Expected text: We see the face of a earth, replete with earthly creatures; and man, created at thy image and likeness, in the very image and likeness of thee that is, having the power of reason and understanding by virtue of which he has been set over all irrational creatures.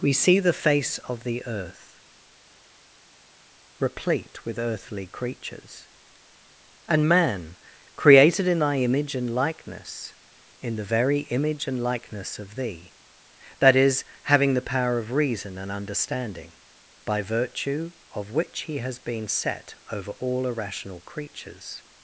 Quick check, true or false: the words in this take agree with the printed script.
false